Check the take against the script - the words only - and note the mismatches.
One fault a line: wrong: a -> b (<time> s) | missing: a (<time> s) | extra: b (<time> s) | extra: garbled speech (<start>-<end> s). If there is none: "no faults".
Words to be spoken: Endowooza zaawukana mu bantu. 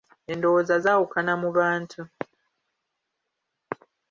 no faults